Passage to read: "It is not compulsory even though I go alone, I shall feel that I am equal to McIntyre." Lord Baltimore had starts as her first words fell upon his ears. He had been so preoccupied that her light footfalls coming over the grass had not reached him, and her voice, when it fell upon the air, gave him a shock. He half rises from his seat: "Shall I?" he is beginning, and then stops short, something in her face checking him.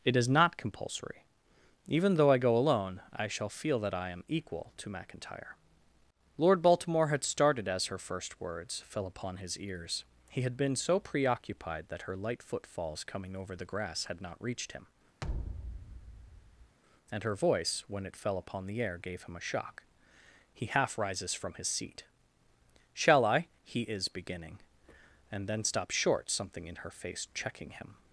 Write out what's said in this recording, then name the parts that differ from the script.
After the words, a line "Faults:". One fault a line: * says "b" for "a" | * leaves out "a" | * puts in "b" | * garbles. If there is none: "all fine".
"It is not compulsory even though I go alone, I shall feel that I am equal to McIntyre." Lord Baltimore had started as her first words fell upon his ears. He had been so preoccupied that her light footfalls coming over the grass had not reached him, and her voice, when it fell upon the air, gave him a shock. He half rises from his seat: "Shall I?" he is beginning, and then stops short, something in her face checking him.
Faults:
* says "started" for "starts"